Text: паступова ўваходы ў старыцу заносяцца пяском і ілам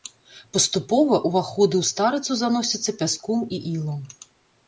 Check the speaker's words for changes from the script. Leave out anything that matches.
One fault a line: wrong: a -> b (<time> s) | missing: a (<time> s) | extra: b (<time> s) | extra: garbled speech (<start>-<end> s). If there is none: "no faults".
no faults